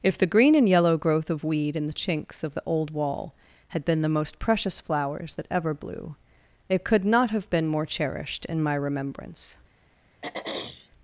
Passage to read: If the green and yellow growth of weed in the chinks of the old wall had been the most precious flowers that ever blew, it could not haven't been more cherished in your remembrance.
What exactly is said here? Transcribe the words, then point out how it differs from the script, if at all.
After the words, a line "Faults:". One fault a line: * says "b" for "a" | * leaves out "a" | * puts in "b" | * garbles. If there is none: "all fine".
If the green and yellow growth of weed in the chinks of the old wall had been the most precious flowers that ever blew, it could not have been more cherished in my remembrance.
Faults:
* says "have" for "haven't"
* says "my" for "your"